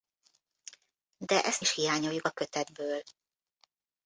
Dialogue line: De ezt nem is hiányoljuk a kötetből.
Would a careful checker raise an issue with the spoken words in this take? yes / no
yes